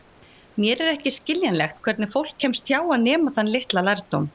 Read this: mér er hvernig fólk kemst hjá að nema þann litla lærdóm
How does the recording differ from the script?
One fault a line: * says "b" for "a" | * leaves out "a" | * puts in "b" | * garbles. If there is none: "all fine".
* puts in "ekki skiljanlegt"